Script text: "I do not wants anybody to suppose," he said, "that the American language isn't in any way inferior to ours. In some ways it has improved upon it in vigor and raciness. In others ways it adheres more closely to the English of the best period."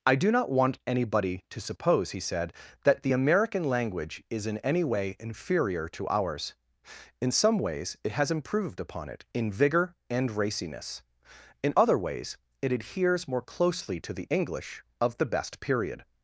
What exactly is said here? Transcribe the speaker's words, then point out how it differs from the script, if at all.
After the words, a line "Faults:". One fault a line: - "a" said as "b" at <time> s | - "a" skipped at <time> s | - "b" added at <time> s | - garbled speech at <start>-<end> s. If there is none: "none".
"I do not want anybody to suppose," he said, "that the American language is in any way inferior to ours. In some ways it has improved upon it in vigor and raciness. In other ways it adheres more closely to the English of the best period."
Faults:
- "wants" said as "want" at 0.5 s
- "isn't" said as "is" at 4.3 s
- "others" said as "other" at 11.7 s